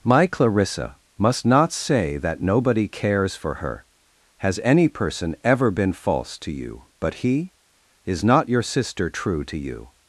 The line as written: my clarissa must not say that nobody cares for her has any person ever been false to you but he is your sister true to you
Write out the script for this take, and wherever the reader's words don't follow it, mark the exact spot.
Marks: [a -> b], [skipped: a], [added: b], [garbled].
my clarissa must not say that nobody cares for her has any person ever been false to you but he is [added: not] your sister true to you